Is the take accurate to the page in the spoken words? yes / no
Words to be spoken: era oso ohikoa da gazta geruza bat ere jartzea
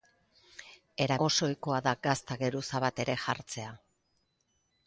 yes